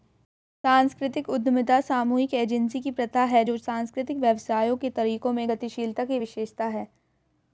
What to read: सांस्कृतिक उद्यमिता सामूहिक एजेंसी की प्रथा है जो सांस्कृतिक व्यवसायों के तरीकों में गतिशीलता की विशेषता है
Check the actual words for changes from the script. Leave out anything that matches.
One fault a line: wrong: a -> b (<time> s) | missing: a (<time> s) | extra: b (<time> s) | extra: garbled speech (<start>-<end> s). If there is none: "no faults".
no faults